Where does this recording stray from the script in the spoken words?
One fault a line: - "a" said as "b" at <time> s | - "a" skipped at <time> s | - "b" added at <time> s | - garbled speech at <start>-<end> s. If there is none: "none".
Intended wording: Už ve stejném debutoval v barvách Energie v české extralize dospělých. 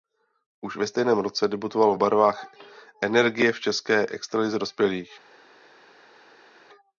- "roce" added at 1.2 s